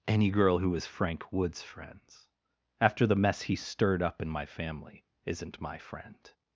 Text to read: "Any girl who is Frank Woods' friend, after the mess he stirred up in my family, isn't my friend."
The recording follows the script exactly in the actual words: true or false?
false